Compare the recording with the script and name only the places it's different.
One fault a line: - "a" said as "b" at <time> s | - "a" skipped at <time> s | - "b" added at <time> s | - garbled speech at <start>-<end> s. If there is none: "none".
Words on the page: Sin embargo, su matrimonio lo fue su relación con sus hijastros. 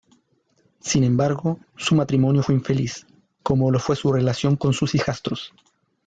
- "fue infeliz como" added at 2.4 s